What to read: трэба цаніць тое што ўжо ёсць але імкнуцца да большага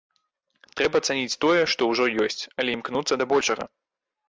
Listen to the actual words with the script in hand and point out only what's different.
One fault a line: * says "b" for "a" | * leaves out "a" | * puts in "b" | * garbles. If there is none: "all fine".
all fine